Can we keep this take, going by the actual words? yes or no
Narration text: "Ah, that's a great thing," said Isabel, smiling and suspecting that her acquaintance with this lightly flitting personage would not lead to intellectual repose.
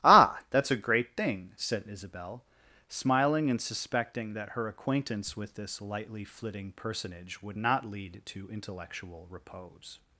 yes